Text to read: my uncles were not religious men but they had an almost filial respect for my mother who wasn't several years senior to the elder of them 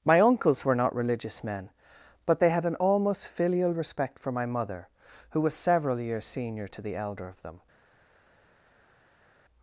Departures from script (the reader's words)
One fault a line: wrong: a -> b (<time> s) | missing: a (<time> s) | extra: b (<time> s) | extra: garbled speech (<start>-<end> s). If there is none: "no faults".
wrong: wasn't -> was (5.4 s)